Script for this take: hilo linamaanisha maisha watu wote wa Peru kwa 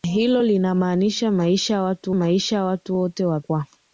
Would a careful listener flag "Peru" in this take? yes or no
yes